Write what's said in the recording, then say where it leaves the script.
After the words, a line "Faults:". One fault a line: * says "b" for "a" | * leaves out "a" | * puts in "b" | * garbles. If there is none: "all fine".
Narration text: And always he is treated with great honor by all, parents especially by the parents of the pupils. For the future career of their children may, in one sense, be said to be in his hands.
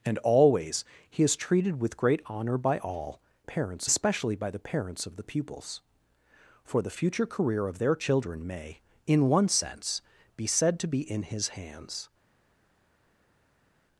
And always he is treated with great honor by all, parents especially by the parents of the pupils. For the future career of their children may, in one sense, be said to be in his hands.
Faults:
all fine